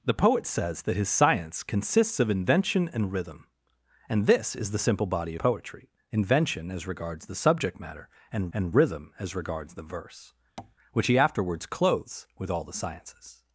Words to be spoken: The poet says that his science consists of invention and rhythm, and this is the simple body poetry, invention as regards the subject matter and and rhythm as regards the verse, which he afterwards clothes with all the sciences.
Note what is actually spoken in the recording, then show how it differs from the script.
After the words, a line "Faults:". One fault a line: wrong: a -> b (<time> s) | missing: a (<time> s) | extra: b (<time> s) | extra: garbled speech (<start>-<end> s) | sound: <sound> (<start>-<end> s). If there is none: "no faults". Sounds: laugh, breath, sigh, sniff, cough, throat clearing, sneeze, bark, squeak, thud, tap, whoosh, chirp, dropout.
The poet says that his science consists of invention and rhythm, and this is the simple body poetry, invention as regards the subject matter and and rhythm as regards the verse, which he afterwards clothes with all the sciences.
Faults:
sound: tap (10.6-10.8 s)